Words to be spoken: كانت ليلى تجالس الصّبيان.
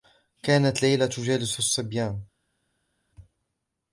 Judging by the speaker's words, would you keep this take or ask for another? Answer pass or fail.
pass